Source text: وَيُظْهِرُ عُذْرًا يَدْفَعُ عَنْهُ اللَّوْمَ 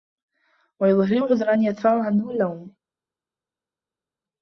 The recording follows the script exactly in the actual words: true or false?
true